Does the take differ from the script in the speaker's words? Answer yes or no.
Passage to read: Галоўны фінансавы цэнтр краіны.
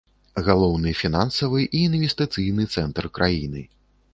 yes